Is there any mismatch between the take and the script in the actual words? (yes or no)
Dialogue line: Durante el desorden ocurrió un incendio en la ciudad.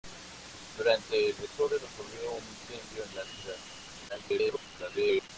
yes